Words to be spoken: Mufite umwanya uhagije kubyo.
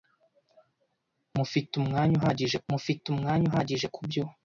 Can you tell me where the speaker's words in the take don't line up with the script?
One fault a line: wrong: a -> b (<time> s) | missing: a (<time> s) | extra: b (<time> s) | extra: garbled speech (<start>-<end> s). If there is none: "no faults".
extra: mufite umwanya uhagije (2.7 s)